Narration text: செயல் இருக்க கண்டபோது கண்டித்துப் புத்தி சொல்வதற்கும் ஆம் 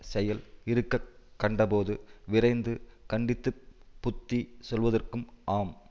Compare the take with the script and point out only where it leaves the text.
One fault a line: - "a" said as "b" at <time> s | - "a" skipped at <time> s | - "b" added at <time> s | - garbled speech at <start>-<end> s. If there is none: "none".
- "விரைந்து" added at 2.2 s